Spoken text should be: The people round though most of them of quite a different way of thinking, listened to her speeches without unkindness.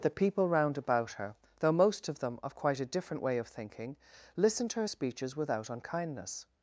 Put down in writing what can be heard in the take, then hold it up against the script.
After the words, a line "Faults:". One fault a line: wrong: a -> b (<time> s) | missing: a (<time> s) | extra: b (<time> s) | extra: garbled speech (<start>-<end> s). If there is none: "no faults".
The people round about her, though most of them of quite a different way of thinking, listened to her speeches without unkindness.
Faults:
extra: about her (0.8 s)